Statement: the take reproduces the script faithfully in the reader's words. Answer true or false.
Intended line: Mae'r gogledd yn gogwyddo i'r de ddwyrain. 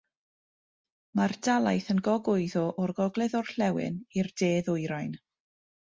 false